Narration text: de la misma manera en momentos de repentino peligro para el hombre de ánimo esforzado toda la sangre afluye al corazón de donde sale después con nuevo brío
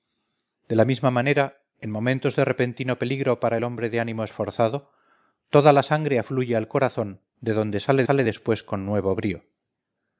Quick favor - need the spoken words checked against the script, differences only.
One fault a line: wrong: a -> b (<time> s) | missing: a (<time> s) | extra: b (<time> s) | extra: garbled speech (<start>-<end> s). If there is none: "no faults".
extra: sale (8.0 s)